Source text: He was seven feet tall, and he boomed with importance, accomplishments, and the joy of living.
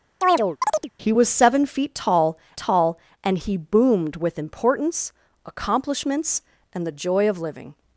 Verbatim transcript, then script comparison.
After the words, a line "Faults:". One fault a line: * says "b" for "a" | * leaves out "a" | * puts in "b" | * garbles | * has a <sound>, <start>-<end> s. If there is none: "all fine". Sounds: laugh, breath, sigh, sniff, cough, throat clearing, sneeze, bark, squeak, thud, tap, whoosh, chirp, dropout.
He was seven feet tall tall, and he boomed with importance, accomplishments, and the joy of living.
Faults:
* has a chirp, 0.2-0.9 s
* puts in "tall"